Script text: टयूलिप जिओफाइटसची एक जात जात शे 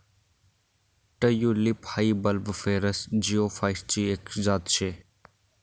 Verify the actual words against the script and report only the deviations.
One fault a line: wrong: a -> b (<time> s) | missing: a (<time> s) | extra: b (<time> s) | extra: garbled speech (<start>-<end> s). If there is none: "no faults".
extra: हाई बल्बिफेरस (1.9 s)
missing: जात (4.8 s)